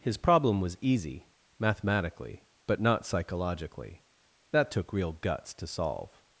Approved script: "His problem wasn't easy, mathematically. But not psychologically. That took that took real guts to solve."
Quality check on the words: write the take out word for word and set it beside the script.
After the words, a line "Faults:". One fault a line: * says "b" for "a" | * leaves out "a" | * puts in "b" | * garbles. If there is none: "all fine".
"His problem was easy, mathematically. But not psychologically. That took real guts to solve."
Faults:
* says "was" for "wasn't"
* leaves out "that took"